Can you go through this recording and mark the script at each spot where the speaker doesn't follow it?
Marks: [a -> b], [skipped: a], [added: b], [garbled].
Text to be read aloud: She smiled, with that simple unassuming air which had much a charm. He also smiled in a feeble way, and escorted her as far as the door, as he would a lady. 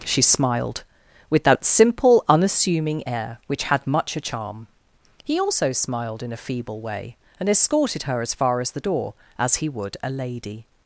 She smiled, with that simple unassuming air which had much a charm. He also smiled in a feeble way, and escorted her as far as the door, as he would a lady.